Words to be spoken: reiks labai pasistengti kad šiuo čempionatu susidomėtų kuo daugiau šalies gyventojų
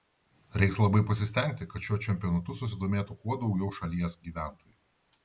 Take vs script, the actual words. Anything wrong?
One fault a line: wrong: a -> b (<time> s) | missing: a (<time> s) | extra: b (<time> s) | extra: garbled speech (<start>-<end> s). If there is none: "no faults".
no faults